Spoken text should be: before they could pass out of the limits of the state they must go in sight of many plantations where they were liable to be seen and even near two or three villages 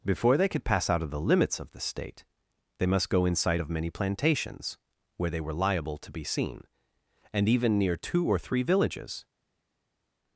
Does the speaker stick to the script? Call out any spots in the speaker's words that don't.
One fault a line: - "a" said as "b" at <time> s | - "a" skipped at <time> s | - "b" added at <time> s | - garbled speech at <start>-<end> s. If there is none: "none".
none